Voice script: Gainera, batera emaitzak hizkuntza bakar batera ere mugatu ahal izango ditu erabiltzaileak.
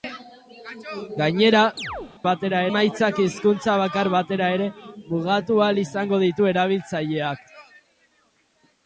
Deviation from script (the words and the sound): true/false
true